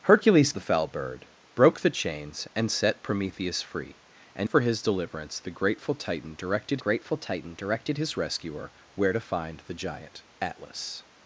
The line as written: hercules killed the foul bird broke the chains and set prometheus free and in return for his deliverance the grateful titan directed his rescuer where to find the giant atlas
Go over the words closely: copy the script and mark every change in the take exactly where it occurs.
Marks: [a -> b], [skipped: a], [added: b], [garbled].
hercules [skipped: killed] the foul bird broke the chains and set prometheus free and [skipped: in return] for his deliverance the grateful titan directed [added: grateful titan directed] his rescuer where to find the giant atlas